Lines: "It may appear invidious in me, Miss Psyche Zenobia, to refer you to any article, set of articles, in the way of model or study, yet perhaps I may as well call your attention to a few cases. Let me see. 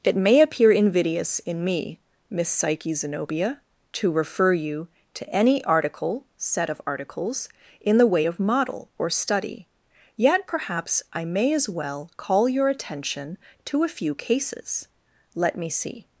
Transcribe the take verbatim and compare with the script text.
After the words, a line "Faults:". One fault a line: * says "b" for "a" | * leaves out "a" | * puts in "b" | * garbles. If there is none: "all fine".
"It may appear invidious in me, Miss Psyche Zenobia, to refer you to any article, set of articles, in the way of model or study, yet perhaps I may as well call your attention to a few cases. Let me see.
Faults:
all fine